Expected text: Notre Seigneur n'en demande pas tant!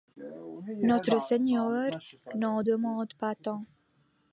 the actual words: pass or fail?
pass